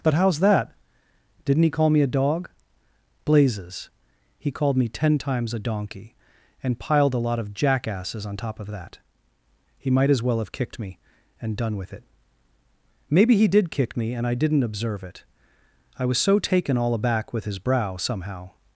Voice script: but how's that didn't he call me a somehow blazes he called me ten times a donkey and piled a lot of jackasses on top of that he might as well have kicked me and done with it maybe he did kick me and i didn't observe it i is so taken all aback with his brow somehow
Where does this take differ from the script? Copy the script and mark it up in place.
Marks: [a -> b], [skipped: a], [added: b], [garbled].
but how's that didn't he call me a [somehow -> dog] blazes he called me ten times a donkey and piled a lot of jackasses on top of that he might as well have kicked me and done with it maybe he did kick me and i didn't observe it i [is -> was] so taken all aback with his brow somehow